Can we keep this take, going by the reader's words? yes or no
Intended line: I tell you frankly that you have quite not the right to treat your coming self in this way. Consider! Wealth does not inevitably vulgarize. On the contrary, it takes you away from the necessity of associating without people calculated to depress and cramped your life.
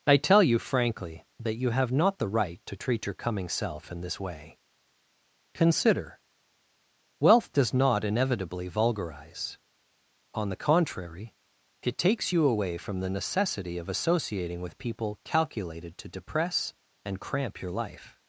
no